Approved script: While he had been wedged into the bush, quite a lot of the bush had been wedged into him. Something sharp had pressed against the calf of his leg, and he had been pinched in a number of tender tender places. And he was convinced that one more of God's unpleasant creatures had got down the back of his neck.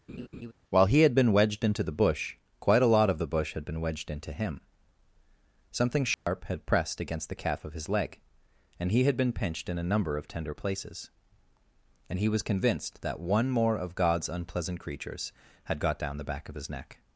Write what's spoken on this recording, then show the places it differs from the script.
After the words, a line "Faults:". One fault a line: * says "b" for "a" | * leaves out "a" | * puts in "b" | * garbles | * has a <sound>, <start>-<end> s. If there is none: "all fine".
While he had been wedged into the bush, quite a lot of the bush had been wedged into him. Something sharp had pressed against the calf of his leg, and he had been pinched in a number of tender places. And he was convinced that one more of God's unpleasant creatures had got down the back of his neck.
Faults:
* has a laugh, 0.1-0.5 s
* has a dropout, 6.1-6.3 s
* leaves out "tender"